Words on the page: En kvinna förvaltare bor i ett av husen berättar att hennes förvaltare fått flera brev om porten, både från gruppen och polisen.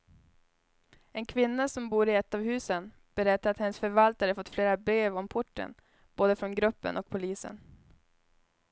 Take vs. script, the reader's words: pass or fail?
fail